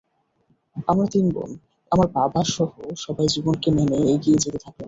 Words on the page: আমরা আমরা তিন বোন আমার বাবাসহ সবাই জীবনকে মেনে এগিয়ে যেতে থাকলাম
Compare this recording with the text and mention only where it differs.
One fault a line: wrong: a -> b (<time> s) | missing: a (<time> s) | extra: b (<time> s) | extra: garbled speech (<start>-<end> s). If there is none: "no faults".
missing: আমরা (1.1 s)